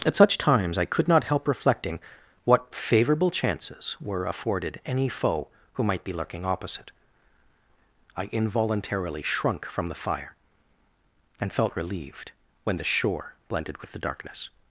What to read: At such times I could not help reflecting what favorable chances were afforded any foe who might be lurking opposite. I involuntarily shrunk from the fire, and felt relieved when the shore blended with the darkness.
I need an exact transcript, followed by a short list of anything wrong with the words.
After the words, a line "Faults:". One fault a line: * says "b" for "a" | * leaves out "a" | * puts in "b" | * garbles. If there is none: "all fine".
At such times I could not help reflecting what favorable chances were afforded any foe who might be lurking opposite. I involuntarily shrunk from the fire, and felt relieved when the shore blended with the darkness.
Faults:
all fine